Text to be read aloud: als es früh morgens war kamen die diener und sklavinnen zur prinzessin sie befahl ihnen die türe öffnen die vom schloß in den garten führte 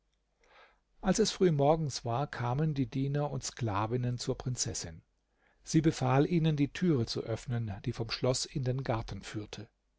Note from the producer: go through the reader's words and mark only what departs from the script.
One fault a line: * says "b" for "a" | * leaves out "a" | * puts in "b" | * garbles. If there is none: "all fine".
* puts in "zu"